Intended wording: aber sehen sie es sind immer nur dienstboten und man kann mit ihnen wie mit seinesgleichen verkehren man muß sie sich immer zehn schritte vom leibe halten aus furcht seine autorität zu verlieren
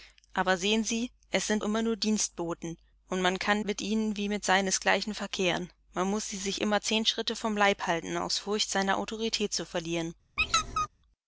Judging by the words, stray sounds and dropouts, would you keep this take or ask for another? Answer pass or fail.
fail